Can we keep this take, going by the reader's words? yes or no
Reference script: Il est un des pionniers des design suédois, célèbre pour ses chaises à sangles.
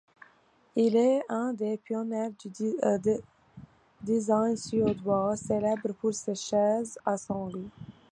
no